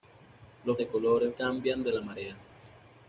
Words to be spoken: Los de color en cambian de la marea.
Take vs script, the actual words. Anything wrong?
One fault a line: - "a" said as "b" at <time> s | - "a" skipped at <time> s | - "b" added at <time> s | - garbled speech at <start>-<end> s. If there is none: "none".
none